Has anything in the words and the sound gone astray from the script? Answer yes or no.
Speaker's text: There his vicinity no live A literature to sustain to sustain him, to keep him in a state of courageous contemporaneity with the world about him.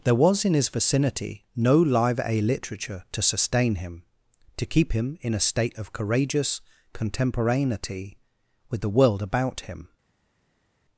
yes